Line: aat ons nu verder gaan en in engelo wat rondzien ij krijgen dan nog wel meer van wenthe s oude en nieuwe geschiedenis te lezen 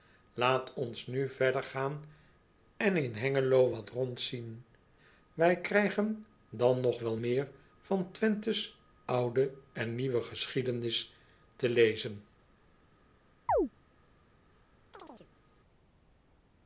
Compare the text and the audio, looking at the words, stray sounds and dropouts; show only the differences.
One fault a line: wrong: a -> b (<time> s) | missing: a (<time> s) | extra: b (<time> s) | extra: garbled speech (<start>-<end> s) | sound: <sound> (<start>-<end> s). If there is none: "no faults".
sound: chirp (13.5-13.7 s)
sound: chirp (14.9-15.3 s)